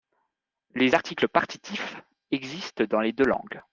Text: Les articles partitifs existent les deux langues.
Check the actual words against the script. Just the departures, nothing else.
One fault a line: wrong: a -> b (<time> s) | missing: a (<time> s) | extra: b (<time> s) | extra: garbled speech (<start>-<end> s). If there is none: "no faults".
extra: dans (2.8 s)